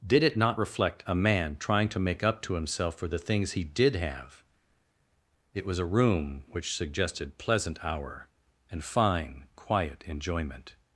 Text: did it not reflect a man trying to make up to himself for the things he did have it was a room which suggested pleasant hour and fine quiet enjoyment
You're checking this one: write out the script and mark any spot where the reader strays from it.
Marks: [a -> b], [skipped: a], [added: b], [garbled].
did it not reflect a man trying to make up to himself for the things he did have it was a room which suggested pleasant hour and fine quiet enjoyment